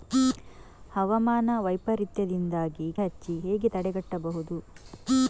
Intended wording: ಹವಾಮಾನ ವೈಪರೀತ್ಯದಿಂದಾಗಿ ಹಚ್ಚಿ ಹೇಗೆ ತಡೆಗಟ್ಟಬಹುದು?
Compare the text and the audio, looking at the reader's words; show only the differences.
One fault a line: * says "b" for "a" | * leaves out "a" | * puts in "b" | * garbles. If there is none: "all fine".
all fine